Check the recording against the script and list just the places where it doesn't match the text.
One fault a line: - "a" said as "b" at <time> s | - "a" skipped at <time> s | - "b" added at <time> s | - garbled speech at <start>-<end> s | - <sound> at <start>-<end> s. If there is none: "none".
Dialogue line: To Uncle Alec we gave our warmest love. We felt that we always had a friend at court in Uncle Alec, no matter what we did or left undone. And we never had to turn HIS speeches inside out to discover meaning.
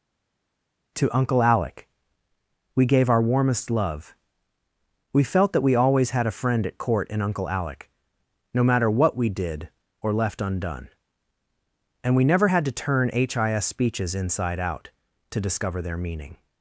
- "their" added at 15.8 s